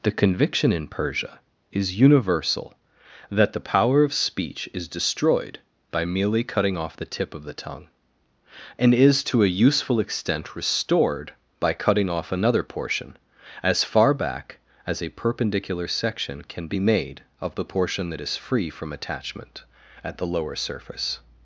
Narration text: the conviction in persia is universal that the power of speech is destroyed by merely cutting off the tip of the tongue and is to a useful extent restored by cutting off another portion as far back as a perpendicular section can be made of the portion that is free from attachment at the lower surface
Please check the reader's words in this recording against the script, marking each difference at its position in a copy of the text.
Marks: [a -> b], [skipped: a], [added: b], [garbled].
the conviction in persia is universal that the power of speech is destroyed by merely cutting off the tip of the tongue and is to a useful extent restored by cutting off another portion as far back as a perpendicular section can be made of the portion that is free from attachment at the lower surface